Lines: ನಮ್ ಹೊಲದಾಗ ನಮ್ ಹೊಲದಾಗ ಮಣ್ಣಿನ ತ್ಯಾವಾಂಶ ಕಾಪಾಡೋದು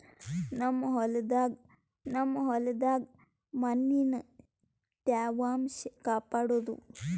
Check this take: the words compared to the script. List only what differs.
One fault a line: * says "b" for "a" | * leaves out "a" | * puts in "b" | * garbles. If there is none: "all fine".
all fine